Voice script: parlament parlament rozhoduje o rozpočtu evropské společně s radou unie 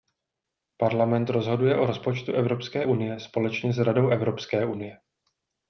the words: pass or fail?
fail